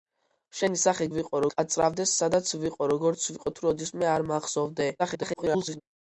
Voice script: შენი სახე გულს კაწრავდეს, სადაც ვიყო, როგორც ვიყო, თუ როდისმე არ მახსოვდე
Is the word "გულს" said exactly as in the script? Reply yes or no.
no